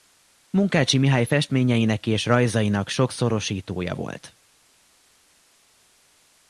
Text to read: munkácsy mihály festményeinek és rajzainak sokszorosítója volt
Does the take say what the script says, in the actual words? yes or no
yes